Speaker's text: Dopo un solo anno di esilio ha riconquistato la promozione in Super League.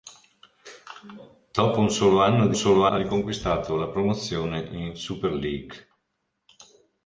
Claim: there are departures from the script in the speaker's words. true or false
true